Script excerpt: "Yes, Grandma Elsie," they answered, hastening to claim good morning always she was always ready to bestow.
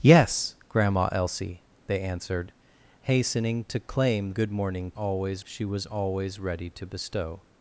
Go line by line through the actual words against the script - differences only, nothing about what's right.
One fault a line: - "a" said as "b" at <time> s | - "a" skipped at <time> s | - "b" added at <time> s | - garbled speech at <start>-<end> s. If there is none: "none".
none